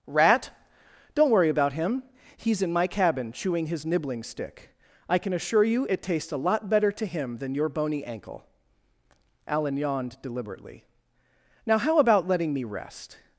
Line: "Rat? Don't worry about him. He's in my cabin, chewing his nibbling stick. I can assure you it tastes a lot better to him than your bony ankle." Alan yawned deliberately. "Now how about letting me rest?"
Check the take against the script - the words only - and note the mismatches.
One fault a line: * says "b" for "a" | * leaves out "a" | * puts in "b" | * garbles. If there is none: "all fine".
all fine